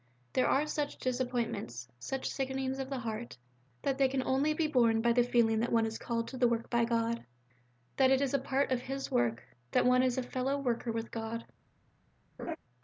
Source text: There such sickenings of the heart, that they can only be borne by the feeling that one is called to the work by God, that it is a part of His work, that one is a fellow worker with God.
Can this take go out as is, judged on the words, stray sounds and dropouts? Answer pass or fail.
fail